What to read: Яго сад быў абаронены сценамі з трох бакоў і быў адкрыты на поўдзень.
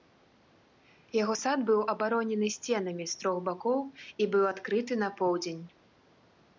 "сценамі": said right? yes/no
yes